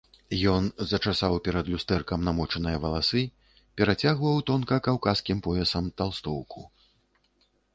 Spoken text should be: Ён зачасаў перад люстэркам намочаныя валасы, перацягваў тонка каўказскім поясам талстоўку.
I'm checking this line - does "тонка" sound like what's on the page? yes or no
yes